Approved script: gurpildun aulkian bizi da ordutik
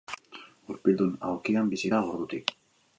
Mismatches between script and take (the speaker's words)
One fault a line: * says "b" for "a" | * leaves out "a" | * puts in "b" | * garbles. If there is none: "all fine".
all fine